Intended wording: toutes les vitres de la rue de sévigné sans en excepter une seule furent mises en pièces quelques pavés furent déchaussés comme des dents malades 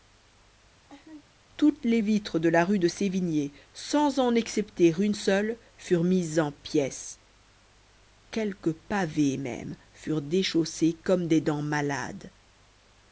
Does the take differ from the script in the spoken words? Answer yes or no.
yes